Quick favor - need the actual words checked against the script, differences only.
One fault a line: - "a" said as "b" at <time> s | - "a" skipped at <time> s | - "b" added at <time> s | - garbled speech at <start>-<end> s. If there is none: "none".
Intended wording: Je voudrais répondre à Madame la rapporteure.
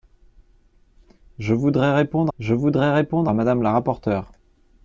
- "je voudrais répondre" added at 2.4 s